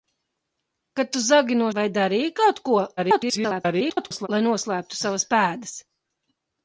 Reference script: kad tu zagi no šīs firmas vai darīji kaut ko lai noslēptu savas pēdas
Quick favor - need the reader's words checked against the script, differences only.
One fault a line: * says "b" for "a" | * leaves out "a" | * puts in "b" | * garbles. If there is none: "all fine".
* leaves out "šīs firmas"
* garbles